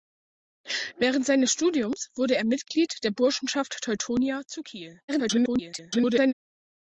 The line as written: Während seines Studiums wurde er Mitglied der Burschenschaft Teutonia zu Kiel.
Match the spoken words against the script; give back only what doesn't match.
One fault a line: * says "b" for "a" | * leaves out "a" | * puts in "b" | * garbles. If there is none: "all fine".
* garbles